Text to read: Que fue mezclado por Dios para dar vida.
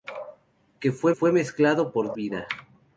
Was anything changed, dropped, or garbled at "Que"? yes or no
no